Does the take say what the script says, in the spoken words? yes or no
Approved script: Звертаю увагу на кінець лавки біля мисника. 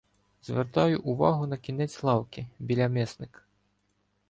yes